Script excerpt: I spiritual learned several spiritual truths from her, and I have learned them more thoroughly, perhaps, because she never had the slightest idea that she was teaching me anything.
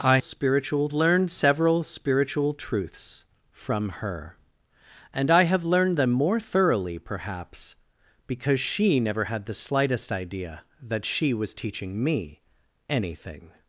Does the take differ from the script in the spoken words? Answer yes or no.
no